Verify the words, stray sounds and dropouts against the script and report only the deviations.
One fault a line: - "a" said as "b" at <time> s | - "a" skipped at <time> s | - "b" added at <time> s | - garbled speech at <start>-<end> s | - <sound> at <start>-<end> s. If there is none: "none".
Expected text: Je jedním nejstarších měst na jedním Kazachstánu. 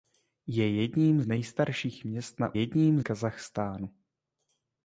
none